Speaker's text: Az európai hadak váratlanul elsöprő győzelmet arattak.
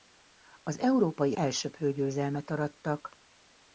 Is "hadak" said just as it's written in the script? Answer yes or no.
no